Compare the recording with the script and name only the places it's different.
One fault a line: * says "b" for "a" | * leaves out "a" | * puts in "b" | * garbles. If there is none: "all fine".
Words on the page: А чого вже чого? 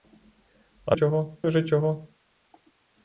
all fine